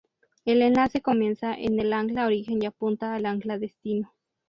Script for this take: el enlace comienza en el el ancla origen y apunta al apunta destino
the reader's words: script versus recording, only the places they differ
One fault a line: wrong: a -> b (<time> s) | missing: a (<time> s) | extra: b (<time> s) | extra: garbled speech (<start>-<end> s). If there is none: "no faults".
missing: el (1.9 s)
wrong: apunta -> ancla (3.3 s)